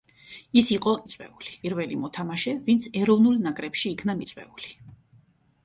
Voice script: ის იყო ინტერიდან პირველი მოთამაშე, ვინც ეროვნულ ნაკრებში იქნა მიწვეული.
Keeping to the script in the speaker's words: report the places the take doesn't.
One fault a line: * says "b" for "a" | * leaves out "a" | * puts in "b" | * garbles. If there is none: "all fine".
* says "მიწვეული" for "ინტერიდან"